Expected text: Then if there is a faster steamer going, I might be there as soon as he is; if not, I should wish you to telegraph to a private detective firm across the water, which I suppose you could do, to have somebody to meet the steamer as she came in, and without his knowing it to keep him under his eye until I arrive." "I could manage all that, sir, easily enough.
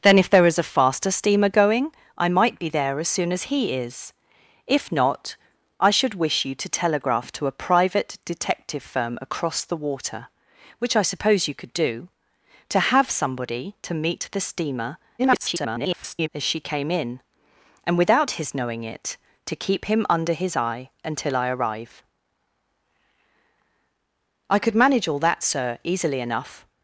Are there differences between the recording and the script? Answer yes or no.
yes